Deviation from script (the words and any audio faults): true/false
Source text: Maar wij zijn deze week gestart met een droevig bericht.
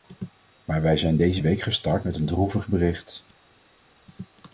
false